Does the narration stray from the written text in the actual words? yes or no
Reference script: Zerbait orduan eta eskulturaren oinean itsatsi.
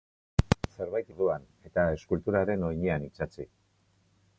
no